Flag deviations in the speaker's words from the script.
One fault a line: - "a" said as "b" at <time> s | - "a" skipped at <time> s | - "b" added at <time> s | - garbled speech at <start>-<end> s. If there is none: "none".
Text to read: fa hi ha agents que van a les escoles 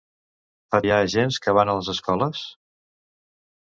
none